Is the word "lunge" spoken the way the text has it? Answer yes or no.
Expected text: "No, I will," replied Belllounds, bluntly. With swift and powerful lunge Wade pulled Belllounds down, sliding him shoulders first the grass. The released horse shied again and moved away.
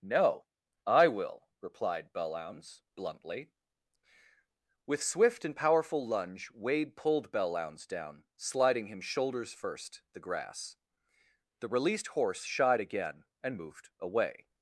yes